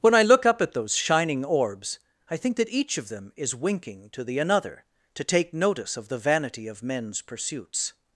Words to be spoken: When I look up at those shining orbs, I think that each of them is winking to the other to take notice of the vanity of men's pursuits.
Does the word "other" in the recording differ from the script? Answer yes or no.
yes